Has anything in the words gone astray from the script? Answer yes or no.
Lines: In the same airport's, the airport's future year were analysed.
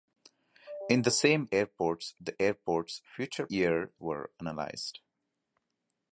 no